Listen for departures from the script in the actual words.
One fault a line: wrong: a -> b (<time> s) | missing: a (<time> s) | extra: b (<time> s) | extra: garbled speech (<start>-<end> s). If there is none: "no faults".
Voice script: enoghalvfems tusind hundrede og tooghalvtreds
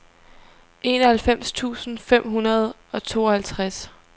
extra: fem (2.0 s)